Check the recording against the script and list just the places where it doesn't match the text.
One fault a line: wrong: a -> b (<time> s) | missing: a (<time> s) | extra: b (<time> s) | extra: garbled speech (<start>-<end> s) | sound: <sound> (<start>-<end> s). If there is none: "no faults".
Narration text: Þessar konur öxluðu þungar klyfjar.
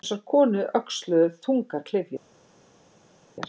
no faults